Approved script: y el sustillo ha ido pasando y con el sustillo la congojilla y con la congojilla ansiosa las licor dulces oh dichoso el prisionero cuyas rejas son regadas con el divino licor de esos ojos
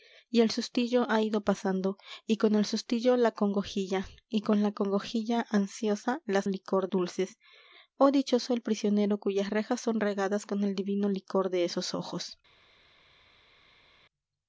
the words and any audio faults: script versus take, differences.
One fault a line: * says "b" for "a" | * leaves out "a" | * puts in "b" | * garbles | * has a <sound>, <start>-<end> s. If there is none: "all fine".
all fine